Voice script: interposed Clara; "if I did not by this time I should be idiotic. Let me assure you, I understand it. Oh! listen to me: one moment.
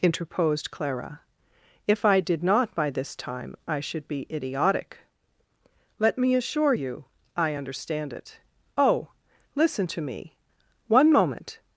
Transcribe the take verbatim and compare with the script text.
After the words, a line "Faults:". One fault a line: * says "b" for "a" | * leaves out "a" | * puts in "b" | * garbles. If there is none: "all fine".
interposed Clara; "if I did not by this time I should be idiotic. Let me assure you, I understand it. Oh! listen to me: one moment.
Faults:
all fine